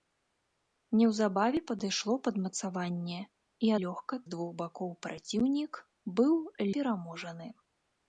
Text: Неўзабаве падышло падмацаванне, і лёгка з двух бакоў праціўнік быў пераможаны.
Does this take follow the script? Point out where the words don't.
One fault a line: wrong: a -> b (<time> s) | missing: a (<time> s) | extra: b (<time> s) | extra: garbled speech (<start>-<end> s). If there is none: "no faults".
no faults